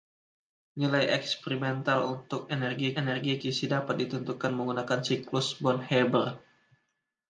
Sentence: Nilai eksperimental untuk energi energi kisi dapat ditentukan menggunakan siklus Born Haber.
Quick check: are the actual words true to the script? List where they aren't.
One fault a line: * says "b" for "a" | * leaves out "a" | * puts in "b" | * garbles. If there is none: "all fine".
all fine